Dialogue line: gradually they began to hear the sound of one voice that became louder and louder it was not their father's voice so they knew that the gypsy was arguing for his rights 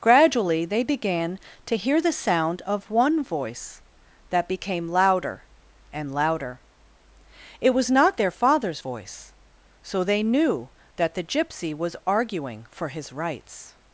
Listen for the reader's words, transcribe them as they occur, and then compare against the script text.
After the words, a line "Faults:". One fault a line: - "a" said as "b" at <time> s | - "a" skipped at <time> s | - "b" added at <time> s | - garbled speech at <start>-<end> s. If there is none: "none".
gradually they began to hear the sound of one voice that became louder and louder it was not their father's voice so they knew that the gypsy was arguing for his rights
Faults:
none